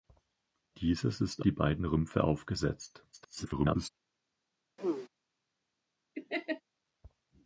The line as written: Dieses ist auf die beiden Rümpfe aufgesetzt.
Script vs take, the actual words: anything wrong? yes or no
yes